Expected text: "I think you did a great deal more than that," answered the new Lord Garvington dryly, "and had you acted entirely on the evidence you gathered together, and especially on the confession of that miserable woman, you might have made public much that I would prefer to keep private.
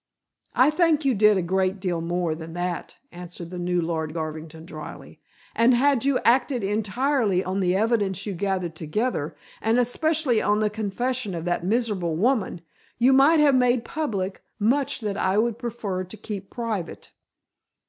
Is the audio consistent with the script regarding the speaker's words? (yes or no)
yes